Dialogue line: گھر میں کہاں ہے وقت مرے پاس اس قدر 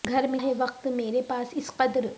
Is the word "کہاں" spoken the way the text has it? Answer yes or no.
no